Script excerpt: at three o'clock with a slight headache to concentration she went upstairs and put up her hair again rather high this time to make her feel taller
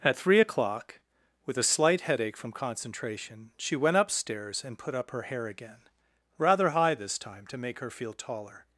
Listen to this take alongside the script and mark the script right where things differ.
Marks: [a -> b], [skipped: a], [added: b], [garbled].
at three o'clock with a slight headache [to -> from] concentration she went upstairs and put up her hair again rather high this time to make her feel taller